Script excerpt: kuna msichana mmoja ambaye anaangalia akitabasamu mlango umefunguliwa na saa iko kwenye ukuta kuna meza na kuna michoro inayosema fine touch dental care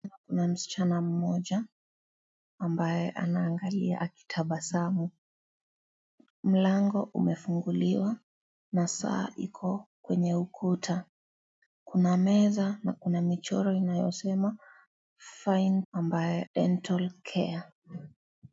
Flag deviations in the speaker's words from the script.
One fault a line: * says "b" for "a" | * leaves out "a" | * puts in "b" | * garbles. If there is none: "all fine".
* says "ambaye" for "touch"